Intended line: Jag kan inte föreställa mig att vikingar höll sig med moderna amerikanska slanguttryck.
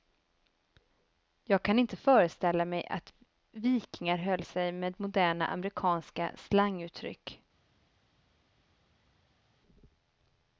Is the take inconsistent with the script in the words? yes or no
no